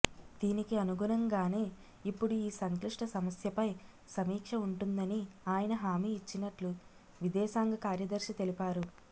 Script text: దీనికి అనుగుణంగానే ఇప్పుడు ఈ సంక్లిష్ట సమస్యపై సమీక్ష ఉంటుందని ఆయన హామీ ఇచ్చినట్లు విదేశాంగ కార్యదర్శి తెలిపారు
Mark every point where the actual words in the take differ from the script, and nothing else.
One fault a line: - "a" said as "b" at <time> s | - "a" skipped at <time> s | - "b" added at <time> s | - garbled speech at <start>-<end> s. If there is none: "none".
none